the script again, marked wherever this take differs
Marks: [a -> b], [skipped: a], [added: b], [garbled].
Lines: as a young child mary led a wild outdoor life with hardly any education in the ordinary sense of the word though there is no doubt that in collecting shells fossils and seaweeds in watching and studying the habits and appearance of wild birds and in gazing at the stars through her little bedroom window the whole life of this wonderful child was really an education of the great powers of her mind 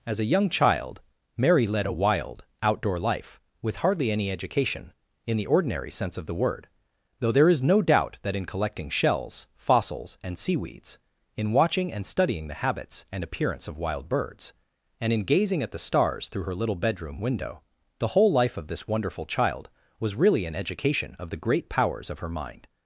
as a young child mary led a wild outdoor life with hardly any education in the ordinary sense of the word though there is no doubt that in collecting shells fossils and seaweeds in watching and studying the habits and appearance of wild birds and in gazing at the stars through her little bedroom window the whole life of this wonderful child was really an education of the great powers of her mind